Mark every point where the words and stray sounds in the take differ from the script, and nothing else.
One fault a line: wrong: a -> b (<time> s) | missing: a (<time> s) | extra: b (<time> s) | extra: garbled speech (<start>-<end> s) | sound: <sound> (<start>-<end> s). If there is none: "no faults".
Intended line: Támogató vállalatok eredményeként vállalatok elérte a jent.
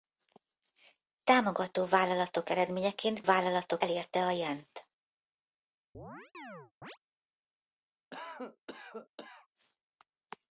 sound: chirp (5.9-7.0 s)
sound: cough (8.1-9.5 s)